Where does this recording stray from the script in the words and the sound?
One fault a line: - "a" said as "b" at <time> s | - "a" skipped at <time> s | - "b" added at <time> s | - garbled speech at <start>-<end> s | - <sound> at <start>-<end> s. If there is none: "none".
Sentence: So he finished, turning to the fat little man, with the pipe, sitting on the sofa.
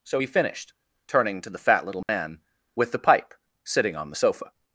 - dropout at 2.0-2.1 s